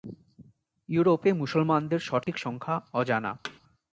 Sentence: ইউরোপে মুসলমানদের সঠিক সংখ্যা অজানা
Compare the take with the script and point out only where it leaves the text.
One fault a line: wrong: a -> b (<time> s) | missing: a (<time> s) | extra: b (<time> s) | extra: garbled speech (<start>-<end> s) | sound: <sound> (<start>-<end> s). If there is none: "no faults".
sound: dropout (2.2-2.3 s)
sound: thud (3.4-3.6 s)